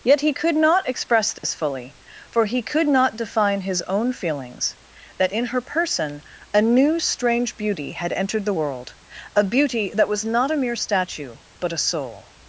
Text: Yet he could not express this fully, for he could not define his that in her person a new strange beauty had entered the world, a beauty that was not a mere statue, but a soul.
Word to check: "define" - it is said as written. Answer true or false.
true